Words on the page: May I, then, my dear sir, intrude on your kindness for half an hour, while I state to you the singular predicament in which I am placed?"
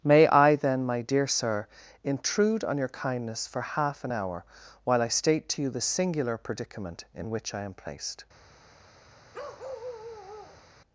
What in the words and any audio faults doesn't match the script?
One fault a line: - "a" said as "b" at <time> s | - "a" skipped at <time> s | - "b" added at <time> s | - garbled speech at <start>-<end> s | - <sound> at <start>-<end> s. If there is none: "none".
- bark at 9.3-10.6 s